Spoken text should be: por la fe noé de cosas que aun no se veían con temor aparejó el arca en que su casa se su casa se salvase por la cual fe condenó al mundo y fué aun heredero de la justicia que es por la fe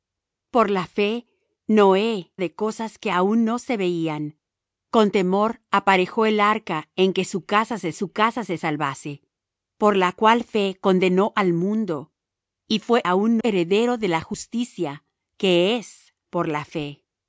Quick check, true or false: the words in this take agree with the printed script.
true